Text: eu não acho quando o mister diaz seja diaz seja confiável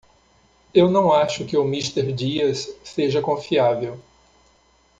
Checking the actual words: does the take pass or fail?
fail